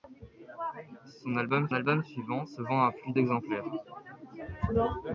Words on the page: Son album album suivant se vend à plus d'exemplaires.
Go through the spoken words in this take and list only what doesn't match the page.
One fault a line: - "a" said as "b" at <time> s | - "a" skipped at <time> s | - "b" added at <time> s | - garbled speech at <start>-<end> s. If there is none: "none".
none